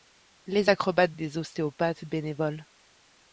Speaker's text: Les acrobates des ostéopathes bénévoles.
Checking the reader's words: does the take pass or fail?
pass